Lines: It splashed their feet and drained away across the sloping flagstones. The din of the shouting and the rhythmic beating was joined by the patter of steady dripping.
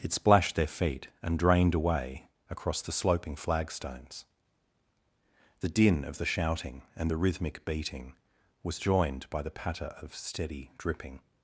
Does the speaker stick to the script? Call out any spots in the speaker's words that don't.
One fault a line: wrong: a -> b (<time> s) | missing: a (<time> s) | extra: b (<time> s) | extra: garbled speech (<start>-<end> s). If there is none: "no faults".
no faults